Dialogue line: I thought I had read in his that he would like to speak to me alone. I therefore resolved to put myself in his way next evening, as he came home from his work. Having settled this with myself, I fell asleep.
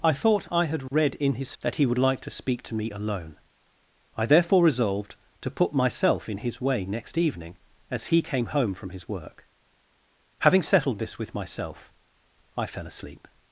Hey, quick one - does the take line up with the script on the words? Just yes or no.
yes